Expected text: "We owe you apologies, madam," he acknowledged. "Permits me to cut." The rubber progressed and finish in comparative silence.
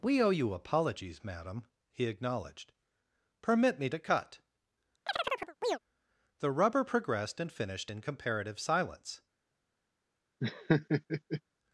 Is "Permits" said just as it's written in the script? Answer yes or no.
no